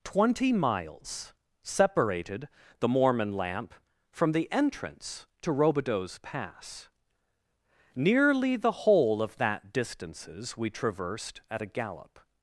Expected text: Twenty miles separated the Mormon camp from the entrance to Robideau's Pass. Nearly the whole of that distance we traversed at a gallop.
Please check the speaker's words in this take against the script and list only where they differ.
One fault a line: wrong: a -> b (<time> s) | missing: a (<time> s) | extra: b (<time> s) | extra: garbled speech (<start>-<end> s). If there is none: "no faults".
wrong: camp -> lamp (3.3 s)
wrong: distance -> distances (9.7 s)